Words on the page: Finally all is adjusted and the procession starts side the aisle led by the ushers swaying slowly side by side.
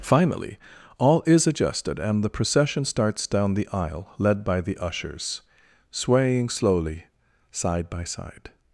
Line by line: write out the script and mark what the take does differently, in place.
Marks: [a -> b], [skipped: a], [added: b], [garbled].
Finally all is adjusted and the procession starts [side -> down] the aisle led by the ushers swaying slowly side by side.